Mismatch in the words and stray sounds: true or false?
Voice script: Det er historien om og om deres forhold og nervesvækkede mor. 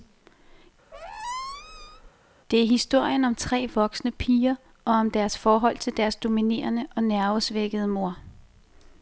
true